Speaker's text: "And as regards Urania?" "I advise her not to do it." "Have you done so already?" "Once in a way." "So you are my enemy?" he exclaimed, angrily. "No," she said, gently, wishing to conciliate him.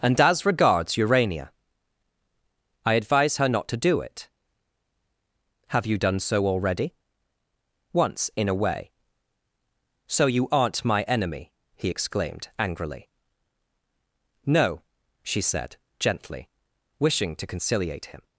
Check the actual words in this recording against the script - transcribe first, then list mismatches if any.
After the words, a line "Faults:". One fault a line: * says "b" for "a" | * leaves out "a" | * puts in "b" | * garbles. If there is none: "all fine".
"And as regards Urania?" "I advise her not to do it." "Have you done so already?" "Once in a way." "So you aren't my enemy?" he exclaimed, angrily. "No," she said, gently, wishing to conciliate him.
Faults:
* says "aren't" for "are"